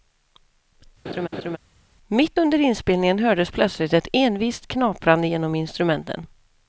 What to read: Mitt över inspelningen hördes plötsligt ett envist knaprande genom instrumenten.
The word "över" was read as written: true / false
false